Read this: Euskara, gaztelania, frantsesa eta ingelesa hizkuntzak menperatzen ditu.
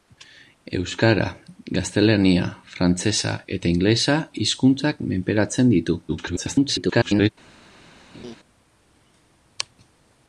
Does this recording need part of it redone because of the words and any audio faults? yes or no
yes